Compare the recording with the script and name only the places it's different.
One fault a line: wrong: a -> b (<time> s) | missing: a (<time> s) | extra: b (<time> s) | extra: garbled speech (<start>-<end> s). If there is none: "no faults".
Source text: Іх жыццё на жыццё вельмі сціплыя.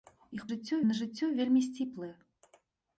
no faults